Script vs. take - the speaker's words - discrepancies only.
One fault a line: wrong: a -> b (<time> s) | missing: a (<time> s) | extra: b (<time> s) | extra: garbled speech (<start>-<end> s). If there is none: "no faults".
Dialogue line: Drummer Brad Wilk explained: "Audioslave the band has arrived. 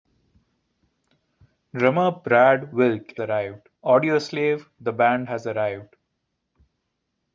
wrong: explained -> arrived (3.2 s)